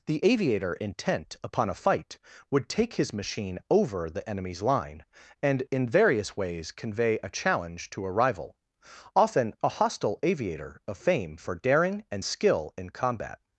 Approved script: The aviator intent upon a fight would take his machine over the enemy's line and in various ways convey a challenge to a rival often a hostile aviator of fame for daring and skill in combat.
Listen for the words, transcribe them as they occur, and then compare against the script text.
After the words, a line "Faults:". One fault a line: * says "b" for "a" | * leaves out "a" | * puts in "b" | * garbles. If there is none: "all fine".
The aviator intent upon a fight would take his machine over the enemy's line and in various ways convey a challenge to a rival often a hostile aviator of fame for daring and skill in combat.
Faults:
all fine